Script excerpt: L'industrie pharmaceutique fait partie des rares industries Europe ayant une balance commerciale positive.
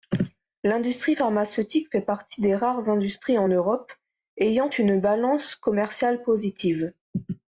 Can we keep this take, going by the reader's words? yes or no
no